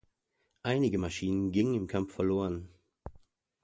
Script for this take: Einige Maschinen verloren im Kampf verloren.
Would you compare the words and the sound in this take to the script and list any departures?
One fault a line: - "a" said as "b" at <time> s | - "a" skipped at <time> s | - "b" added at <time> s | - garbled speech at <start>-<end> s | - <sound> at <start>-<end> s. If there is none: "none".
- "verloren" said as "gingen" at 1.5 s